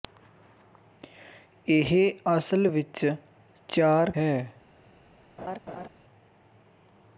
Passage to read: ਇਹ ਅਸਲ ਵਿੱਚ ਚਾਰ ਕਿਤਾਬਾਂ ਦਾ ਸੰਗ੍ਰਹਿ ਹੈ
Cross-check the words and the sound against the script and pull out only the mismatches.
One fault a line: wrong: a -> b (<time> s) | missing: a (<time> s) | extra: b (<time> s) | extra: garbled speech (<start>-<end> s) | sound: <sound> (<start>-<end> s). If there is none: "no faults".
missing: ਕਿਤਾਬਾਂ ਦਾ ਸੰਗ੍ਰਹਿ (4.1 s)
sound: laugh (5.4-5.9 s)